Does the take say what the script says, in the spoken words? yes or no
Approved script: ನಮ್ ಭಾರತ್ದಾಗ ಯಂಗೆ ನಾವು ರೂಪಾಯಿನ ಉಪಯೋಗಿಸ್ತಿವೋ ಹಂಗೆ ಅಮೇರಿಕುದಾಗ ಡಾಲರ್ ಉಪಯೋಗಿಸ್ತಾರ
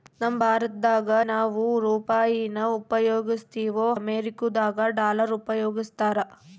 no